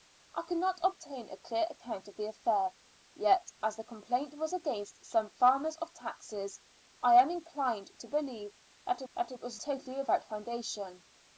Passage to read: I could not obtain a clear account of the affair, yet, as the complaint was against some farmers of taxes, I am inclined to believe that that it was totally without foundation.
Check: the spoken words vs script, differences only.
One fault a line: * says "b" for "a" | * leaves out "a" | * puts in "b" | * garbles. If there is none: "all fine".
all fine